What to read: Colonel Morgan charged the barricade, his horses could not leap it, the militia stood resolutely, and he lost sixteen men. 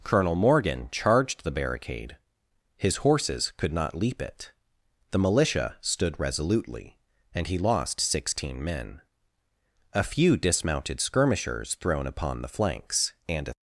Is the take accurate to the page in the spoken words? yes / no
no